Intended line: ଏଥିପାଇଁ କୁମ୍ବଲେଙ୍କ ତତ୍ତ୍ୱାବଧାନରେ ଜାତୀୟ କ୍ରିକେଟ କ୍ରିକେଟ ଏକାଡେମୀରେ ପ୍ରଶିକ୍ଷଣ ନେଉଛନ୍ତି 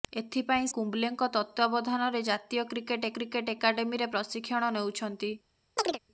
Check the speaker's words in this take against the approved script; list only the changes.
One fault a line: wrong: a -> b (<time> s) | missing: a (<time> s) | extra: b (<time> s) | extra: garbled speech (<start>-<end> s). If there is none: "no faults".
no faults